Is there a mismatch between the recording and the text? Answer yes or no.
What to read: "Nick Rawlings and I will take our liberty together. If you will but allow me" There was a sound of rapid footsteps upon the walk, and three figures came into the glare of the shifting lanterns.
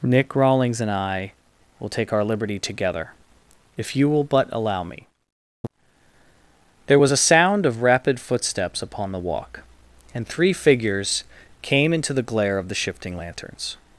no